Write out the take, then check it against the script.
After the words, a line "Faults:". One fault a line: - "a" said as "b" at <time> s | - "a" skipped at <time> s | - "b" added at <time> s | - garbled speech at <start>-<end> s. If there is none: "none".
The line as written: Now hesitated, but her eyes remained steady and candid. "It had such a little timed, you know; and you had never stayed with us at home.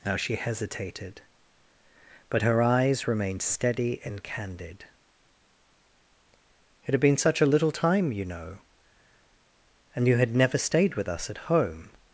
Now she hesitated, but her eyes remained steady and candid. "It had been such a little time, you know; and you had never stayed with us at home.
Faults:
- "she" added at 0.1 s
- "been" added at 7.0 s
- "timed" said as "time" at 7.7 s